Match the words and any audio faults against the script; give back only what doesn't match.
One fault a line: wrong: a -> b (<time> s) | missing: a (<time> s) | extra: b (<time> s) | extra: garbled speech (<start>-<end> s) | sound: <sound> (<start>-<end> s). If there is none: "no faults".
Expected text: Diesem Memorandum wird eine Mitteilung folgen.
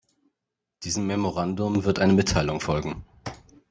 no faults